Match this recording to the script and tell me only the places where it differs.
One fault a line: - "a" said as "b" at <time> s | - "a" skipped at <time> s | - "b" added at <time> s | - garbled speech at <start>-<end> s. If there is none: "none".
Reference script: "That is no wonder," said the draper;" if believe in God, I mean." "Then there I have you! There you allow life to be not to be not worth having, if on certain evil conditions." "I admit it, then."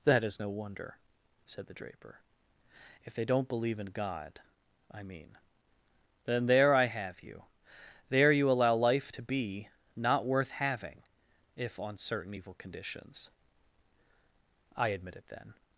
- "they don't" added at 3.1 s
- "to be not" skipped at 10.3 s